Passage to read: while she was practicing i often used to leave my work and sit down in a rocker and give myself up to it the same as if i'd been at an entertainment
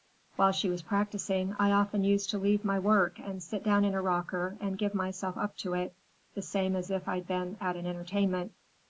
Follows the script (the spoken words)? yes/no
yes